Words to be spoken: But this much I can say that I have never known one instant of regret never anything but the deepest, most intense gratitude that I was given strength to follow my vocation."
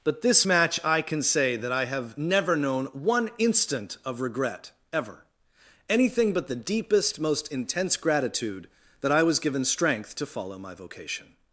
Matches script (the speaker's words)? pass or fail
fail